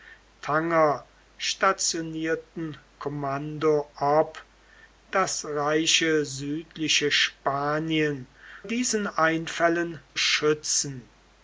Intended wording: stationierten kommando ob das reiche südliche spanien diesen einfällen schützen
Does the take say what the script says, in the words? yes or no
yes